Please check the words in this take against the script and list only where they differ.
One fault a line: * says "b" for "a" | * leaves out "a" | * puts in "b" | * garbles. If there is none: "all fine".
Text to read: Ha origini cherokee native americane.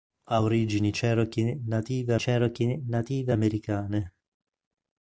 * puts in "cherokee native"